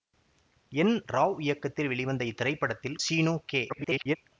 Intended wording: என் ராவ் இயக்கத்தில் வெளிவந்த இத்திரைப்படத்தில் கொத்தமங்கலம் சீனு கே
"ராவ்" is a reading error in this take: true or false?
false